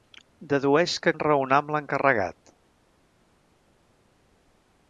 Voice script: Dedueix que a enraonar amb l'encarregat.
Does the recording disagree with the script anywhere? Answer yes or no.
no